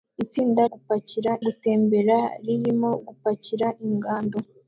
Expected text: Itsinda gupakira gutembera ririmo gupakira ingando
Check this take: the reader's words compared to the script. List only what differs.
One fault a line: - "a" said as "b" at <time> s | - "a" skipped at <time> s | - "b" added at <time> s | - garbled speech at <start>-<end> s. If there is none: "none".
none